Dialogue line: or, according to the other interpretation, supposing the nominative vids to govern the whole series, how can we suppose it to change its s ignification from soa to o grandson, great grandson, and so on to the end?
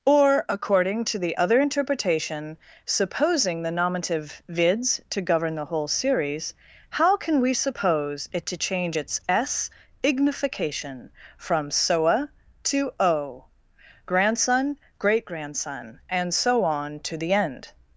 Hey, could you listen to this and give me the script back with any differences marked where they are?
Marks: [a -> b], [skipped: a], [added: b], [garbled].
or, according to the other interpretation, supposing the nominative vids to govern the whole series, how can we suppose it to change its s ignification from soa to o grandson, great grandson, and so on to the end?